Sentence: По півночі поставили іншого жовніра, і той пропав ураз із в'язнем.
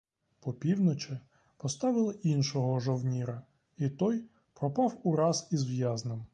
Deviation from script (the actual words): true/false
false